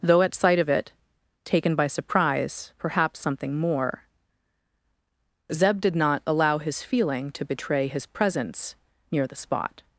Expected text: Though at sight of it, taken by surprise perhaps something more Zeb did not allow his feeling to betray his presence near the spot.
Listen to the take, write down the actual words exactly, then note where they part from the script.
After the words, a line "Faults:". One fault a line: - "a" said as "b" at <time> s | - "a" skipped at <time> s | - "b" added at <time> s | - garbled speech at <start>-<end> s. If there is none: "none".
Though at sight of it, taken by surprise perhaps something more Zeb did not allow his feeling to betray his presence near the spot.
Faults:
none